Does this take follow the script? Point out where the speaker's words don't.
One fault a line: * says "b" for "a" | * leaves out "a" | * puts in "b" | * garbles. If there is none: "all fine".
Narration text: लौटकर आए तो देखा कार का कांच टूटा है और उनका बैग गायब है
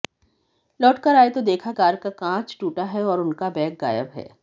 all fine